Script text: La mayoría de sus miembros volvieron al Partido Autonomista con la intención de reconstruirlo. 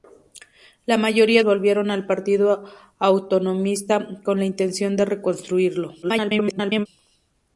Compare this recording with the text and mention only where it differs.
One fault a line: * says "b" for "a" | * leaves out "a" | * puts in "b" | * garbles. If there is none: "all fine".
* leaves out "de sus miembros"
* garbles